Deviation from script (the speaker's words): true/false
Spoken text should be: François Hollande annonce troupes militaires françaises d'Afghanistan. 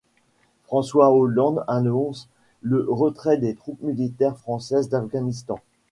true